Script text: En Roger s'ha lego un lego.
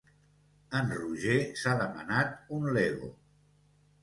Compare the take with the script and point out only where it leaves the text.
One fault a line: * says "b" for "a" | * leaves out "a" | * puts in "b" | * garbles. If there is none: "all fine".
* says "demanat" for "lego"